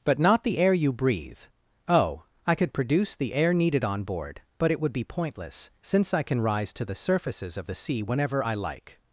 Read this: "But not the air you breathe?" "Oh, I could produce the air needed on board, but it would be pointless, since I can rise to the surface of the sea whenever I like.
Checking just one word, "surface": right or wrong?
wrong